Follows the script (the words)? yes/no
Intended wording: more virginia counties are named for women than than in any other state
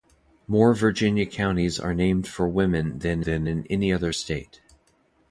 yes